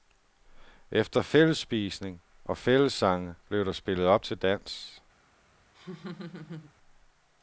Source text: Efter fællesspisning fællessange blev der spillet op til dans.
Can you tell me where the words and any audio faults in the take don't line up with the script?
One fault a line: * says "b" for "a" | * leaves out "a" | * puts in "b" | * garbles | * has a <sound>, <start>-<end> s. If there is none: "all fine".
* puts in "og"
* has a laugh, 5.7-6.7 s